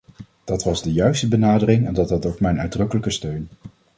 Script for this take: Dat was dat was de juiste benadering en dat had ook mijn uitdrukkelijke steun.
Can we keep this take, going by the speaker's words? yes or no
no